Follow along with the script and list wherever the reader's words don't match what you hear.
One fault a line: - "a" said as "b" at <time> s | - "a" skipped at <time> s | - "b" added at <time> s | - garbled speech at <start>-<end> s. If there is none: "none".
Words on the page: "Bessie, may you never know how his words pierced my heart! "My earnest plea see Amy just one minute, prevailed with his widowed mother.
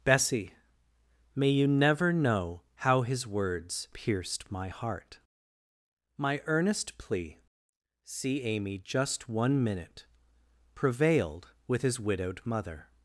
none